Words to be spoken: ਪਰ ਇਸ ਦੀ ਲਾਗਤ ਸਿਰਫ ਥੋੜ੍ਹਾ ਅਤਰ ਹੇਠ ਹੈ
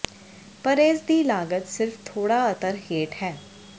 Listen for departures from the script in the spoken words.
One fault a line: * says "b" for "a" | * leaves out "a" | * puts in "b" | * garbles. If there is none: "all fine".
all fine